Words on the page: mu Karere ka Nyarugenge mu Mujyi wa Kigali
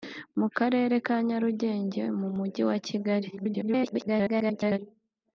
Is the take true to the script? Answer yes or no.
no